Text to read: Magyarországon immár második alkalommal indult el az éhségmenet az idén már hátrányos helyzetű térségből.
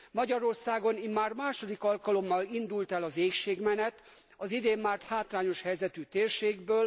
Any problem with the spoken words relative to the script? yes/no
no